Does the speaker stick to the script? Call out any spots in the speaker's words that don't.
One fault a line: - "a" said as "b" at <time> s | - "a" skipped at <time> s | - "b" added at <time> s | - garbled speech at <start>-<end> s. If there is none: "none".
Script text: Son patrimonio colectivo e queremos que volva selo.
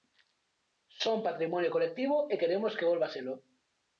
none